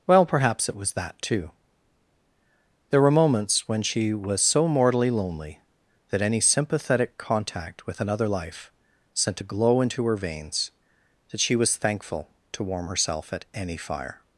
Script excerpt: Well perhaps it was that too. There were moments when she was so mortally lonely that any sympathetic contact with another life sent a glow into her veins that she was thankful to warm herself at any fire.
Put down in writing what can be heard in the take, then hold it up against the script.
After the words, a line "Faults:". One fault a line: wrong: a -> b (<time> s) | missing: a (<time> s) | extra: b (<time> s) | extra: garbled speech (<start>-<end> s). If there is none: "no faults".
Well perhaps it was that too. There were moments when she was so mortally lonely that any sympathetic contact with another life sent a glow into her veins that she was thankful to warm herself at any fire.
Faults:
no faults